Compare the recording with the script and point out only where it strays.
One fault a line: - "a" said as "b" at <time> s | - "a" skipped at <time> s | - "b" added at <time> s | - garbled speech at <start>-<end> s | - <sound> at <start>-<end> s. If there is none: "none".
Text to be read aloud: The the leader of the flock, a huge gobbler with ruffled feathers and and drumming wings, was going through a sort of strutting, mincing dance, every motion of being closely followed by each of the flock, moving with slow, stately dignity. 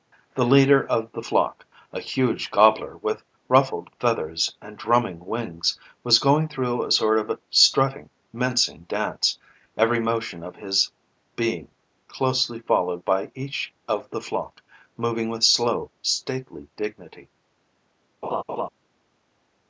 - "the" skipped at 0.5 s
- "and" skipped at 4.8 s
- "his" added at 10.6 s
- laugh at 18.2-18.7 s